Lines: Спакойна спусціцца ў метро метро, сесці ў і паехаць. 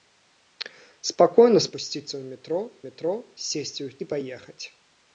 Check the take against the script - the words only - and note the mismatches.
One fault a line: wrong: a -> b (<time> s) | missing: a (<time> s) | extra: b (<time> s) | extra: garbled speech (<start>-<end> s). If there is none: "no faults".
no faults